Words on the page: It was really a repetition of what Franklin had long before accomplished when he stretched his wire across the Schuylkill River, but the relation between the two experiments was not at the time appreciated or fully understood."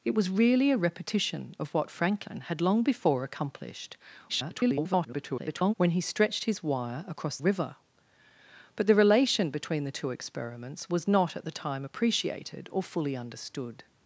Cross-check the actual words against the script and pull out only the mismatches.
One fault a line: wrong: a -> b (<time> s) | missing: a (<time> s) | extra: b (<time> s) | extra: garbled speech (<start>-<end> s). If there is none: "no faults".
extra: garbled speech (4.3-5.7 s)
missing: the Schuylkill (7.4 s)